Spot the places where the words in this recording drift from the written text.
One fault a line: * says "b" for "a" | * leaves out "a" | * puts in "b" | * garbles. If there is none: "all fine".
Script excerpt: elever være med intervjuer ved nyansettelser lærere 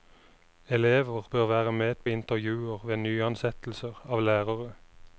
* puts in "bør"
* puts in "på"
* puts in "av"